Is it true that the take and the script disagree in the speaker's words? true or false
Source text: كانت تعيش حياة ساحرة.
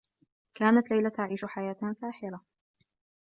true